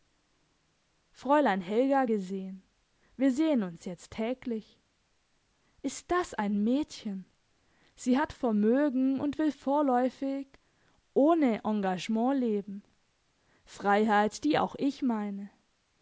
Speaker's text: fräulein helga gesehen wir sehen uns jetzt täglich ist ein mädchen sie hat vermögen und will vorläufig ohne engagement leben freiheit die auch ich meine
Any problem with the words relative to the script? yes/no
yes